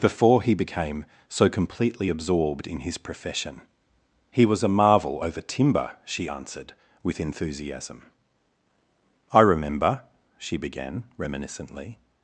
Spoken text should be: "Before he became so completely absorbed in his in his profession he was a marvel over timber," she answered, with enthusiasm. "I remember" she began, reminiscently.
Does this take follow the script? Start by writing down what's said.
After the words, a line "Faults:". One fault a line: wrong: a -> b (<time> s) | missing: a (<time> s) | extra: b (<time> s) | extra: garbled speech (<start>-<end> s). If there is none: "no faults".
"Before he became so completely absorbed in his profession he was a marvel over timber," she answered, with enthusiasm. "I remember" she began, reminiscently.
Faults:
missing: in his (3.0 s)